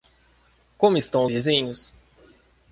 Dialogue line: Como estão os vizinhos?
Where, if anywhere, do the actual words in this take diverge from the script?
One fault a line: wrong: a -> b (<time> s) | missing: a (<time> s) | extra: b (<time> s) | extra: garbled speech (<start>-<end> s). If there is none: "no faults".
missing: os (1.3 s)